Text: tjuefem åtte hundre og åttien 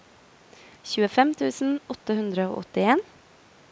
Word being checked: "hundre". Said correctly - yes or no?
yes